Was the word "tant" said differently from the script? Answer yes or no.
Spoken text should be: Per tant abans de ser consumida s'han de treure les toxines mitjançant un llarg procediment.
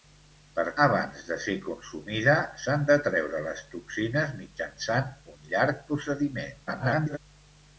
yes